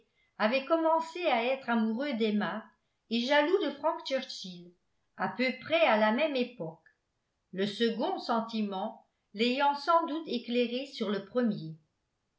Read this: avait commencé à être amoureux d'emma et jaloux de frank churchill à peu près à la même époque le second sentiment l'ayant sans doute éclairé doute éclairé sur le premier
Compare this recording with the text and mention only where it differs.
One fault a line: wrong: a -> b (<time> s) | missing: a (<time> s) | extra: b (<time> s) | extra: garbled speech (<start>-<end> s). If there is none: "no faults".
missing: doute éclairé (10.9 s)